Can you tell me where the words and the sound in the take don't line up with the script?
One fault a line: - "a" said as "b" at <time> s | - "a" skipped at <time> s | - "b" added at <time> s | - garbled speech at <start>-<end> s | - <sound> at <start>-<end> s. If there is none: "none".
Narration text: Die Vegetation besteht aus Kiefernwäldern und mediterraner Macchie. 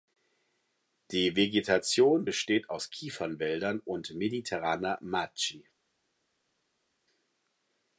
none